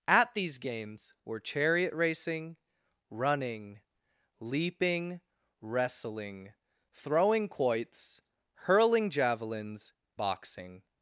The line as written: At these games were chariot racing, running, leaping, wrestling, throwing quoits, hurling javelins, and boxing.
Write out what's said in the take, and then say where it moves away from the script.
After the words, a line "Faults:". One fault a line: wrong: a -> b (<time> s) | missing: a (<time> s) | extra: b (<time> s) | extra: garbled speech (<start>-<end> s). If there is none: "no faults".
At these games were chariot racing, running, leaping, wrestling, throwing quoits, hurling javelins, boxing.
Faults:
missing: and (9.9 s)